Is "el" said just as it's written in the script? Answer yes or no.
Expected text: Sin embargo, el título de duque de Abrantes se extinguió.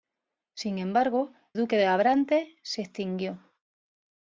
no